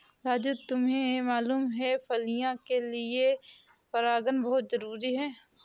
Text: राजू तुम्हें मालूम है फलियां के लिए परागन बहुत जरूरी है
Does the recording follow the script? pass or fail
pass